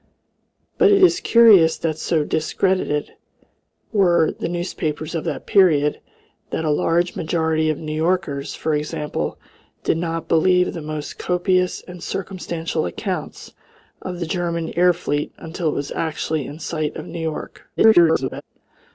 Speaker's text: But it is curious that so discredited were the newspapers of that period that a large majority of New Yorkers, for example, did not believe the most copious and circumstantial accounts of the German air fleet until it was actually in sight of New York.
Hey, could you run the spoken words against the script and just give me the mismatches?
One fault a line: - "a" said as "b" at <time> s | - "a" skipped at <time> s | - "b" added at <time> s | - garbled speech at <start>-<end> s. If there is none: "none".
- garbled speech at 17.8-18.4 s